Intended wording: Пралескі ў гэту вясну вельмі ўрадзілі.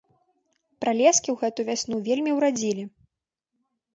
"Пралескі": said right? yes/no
yes